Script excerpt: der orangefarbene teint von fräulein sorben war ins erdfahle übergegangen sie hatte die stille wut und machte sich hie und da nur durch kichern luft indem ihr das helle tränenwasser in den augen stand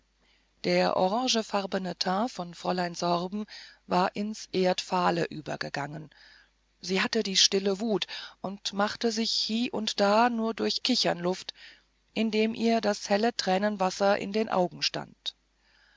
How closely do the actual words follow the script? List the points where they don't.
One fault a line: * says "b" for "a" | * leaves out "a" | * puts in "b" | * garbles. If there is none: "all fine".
all fine